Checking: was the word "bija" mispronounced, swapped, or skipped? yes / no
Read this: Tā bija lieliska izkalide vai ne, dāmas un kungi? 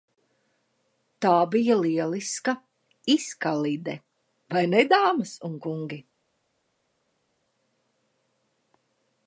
no